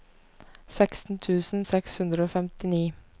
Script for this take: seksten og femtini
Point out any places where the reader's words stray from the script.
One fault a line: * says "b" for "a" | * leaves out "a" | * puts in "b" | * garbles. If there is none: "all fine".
* puts in "tusen seks hundre"